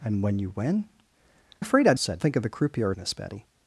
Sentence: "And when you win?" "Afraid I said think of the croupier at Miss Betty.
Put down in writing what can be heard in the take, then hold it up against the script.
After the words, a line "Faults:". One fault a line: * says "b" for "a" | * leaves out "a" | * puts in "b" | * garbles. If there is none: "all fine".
"And when you win?" "Afraid I said think of the croupier at Miss Betty.
Faults:
all fine